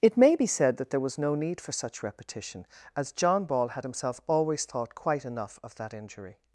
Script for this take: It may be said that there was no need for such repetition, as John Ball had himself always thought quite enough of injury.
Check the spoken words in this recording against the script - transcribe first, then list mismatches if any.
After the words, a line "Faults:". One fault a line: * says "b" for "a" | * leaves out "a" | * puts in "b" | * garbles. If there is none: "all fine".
It may be said that there was no need for such repetition, as John Ball had himself always thought quite enough of that injury.
Faults:
* puts in "that"